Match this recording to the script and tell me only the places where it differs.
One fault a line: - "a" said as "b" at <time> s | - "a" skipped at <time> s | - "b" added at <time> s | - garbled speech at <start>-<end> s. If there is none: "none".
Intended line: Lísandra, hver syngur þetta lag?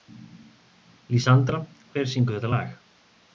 none